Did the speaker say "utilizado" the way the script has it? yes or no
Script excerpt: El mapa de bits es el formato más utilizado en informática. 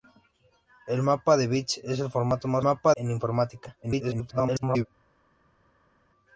no